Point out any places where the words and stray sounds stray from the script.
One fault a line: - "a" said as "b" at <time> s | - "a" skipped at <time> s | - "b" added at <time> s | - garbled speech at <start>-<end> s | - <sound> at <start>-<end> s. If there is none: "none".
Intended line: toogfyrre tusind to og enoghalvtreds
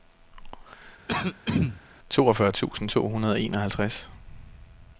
- throat clearing at 1.1-1.8 s
- "hundrede" added at 3.1 s